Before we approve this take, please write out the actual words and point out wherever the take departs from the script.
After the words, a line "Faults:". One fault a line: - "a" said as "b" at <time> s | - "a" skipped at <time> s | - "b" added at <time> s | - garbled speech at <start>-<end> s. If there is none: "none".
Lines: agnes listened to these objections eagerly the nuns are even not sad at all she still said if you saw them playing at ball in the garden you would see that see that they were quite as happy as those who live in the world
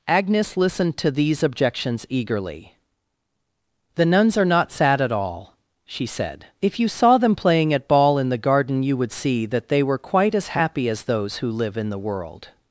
agnes listened to these objections eagerly the nuns are not sad at all she said if you saw them playing at ball in the garden you would see that they were quite as happy as those who live in the world
Faults:
- "even" skipped at 4.5 s
- "still" skipped at 6.0 s
- "see that" skipped at 9.7 s